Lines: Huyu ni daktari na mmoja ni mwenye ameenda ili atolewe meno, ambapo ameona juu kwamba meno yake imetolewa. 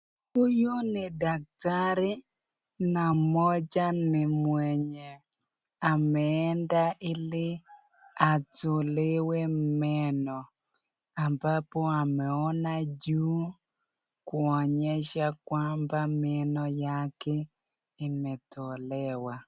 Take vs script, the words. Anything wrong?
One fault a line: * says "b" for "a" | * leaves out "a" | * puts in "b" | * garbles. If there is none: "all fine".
* puts in "kuonyesha"